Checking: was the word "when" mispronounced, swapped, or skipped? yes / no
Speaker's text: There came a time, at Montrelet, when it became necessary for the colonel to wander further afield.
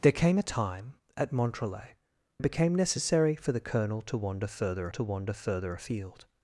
yes